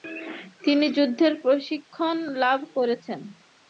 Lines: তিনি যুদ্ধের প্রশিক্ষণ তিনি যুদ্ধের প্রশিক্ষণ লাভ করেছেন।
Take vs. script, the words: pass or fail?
fail